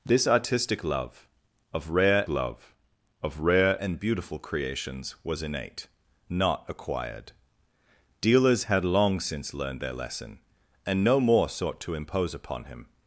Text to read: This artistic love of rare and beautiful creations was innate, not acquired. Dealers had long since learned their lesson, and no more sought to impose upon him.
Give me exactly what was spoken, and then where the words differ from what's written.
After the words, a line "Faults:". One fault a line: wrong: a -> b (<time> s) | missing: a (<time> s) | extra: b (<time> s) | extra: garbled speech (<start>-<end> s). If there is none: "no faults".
This artistic love of rare love of rare and beautiful creations was innate, not acquired. Dealers had long since learned their lesson, and no more sought to impose upon him.
Faults:
extra: love of rare (2.3 s)